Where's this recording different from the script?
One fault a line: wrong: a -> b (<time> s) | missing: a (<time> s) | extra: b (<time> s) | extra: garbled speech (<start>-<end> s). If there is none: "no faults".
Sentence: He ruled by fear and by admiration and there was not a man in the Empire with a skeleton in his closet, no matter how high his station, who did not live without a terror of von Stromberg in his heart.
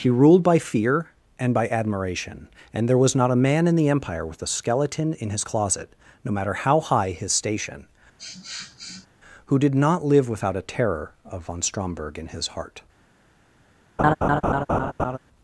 no faults